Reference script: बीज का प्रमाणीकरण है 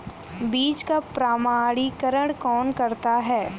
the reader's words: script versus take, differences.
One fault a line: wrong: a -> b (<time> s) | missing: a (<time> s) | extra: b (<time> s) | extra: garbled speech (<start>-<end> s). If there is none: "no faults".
extra: कौन करता (2.3 s)